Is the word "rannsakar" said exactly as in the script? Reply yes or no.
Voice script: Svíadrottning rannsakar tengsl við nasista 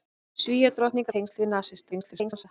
no